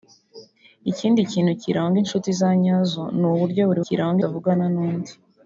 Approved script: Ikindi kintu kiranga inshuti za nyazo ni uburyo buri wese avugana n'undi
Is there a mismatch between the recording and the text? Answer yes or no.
yes